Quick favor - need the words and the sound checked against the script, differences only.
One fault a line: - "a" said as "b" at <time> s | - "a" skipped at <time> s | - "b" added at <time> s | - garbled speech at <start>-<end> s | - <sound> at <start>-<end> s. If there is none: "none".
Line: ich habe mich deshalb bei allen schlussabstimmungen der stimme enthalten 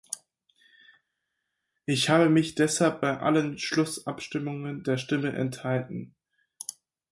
none